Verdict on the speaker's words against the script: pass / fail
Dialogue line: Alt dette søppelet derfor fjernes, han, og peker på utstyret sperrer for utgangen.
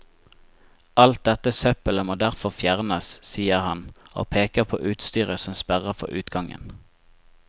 fail